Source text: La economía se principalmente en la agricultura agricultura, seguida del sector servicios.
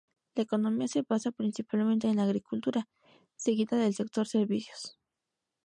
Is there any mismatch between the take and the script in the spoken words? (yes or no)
yes